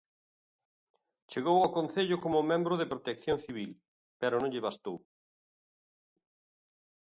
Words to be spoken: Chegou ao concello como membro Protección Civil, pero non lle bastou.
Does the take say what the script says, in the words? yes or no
no